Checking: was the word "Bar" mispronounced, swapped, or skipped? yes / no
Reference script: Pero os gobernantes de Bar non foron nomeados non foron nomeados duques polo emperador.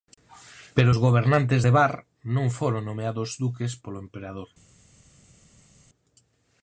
no